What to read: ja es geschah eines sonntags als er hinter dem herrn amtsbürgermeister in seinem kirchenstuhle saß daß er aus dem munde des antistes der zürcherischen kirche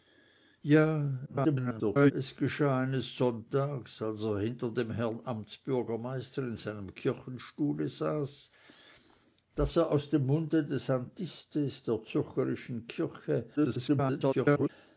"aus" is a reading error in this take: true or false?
false